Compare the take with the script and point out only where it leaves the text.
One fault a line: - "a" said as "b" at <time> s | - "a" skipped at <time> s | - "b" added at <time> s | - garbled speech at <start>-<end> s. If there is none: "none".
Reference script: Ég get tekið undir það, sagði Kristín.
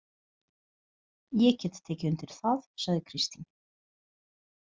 none